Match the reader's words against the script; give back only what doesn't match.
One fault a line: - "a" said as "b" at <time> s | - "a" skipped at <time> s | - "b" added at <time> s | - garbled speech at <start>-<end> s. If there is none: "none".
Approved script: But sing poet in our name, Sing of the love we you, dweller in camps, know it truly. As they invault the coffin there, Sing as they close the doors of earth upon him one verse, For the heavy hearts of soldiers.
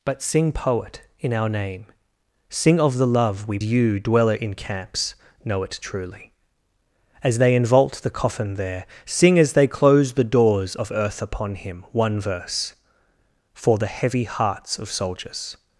none